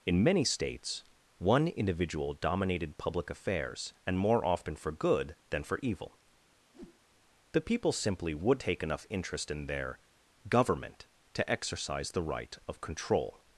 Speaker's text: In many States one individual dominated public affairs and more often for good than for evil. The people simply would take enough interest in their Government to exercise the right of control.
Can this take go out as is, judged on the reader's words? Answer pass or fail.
pass